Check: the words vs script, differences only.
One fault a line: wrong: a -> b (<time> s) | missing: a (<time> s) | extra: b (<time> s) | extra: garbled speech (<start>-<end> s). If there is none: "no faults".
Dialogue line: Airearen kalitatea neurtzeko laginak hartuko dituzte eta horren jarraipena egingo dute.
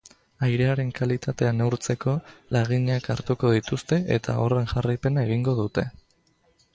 no faults